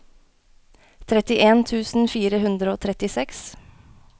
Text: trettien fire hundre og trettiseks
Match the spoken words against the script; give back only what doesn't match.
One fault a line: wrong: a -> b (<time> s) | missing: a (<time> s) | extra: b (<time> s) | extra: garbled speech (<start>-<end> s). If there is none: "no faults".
extra: tusen (1.7 s)